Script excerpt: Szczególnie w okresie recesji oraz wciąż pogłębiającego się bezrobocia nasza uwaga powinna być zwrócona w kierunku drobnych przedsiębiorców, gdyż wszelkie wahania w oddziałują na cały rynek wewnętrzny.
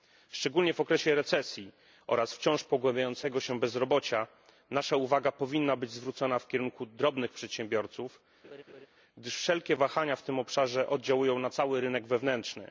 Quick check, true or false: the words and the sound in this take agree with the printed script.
false